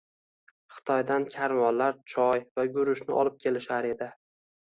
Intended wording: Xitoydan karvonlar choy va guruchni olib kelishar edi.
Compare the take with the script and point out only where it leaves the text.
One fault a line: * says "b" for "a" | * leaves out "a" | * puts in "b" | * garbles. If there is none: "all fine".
all fine